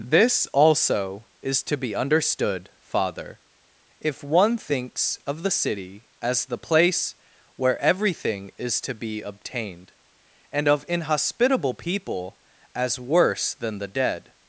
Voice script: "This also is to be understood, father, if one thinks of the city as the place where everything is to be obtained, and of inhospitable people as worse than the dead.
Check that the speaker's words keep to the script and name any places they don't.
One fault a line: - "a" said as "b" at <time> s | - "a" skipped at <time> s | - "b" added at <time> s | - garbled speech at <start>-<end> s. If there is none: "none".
none